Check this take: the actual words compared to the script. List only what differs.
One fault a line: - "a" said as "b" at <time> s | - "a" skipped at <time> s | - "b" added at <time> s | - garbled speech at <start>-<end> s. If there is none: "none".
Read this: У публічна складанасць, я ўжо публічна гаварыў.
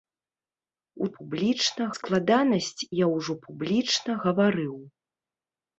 none